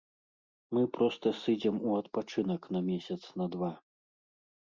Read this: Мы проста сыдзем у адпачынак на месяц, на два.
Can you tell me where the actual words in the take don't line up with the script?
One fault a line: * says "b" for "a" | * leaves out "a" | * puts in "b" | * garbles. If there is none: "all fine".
all fine